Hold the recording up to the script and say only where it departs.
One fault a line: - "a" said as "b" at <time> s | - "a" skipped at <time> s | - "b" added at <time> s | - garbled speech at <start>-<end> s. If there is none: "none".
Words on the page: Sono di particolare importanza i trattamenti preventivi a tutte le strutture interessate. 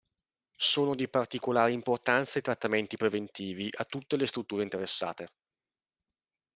none